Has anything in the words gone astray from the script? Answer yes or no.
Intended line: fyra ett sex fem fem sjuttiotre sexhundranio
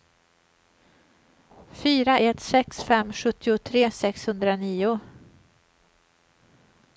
yes